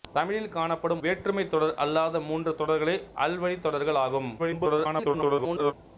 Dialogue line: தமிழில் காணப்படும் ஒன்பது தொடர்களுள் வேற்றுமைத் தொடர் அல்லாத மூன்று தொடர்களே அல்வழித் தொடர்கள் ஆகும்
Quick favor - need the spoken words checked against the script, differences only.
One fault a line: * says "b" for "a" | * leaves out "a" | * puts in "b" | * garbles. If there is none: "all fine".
* leaves out "ஒன்பது தொடர்களுள்"
* garbles